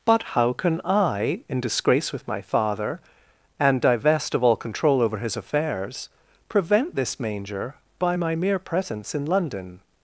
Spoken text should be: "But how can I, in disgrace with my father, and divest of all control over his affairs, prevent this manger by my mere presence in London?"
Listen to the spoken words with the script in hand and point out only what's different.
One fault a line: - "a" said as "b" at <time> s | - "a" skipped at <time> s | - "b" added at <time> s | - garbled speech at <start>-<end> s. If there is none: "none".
none